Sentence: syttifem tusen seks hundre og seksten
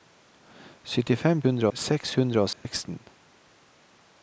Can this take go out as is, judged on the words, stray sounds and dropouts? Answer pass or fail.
fail